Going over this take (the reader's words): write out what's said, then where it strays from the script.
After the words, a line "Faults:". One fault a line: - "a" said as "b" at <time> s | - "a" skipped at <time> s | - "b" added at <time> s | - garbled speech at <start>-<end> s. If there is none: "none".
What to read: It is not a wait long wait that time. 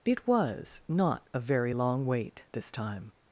It was not a very long wait this time.
Faults:
- "is" said as "was" at 0.2 s
- "wait" said as "very" at 1.4 s
- "that" said as "this" at 2.5 s